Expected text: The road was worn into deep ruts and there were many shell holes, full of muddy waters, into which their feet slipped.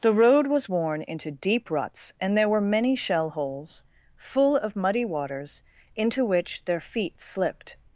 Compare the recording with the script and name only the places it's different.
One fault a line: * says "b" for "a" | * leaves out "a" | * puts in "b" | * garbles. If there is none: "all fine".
all fine